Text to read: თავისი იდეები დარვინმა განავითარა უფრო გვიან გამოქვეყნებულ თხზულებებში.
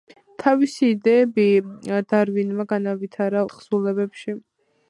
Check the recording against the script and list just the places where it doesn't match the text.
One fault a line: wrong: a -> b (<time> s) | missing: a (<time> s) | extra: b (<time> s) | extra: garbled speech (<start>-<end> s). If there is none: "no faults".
missing: უფრო გვიან გამოქვეყნებულ (3.4 s)